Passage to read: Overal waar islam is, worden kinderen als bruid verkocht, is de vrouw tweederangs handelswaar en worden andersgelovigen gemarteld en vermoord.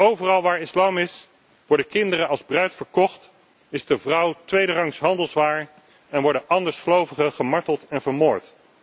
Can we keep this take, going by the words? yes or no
yes